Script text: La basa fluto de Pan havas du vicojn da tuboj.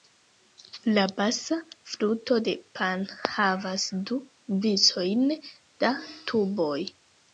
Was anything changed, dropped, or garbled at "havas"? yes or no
no